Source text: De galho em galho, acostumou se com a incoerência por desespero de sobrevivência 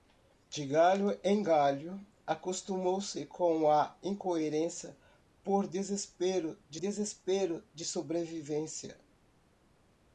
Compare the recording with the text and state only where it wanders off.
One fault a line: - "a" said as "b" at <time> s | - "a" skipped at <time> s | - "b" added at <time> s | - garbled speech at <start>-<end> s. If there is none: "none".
- "desespero de" added at 6.8 s